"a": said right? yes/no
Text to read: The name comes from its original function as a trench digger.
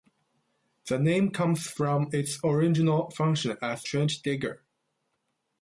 no